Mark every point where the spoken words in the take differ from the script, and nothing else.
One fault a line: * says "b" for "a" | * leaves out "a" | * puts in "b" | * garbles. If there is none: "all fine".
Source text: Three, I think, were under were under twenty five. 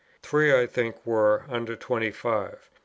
* leaves out "were under"